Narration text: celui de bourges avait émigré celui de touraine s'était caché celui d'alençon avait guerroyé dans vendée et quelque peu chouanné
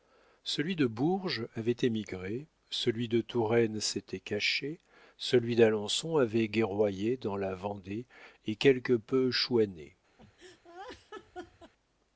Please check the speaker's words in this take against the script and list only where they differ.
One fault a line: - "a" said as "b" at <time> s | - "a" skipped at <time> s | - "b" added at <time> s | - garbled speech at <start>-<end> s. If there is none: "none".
- "la" added at 7.4 s